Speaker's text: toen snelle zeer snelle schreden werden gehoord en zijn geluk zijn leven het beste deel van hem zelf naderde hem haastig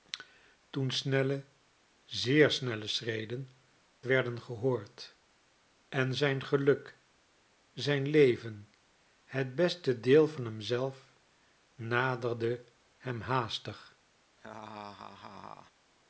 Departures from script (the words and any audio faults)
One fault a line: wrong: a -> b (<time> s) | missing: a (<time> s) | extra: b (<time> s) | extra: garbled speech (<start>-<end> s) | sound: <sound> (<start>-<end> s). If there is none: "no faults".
sound: laugh (14.4-15.7 s)